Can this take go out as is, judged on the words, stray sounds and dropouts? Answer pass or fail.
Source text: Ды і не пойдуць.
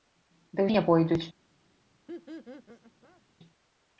fail